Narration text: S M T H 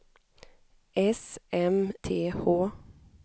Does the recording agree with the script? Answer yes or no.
yes